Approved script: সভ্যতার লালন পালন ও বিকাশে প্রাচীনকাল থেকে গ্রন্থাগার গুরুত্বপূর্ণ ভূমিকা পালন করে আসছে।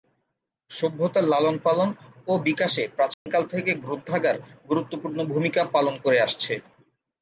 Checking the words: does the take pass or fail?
pass